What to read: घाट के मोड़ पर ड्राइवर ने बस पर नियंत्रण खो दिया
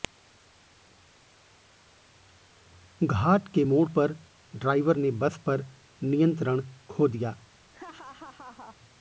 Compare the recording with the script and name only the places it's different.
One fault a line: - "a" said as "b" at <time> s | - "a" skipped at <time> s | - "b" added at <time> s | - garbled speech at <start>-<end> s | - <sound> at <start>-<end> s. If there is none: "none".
- laugh at 7.7-8.8 s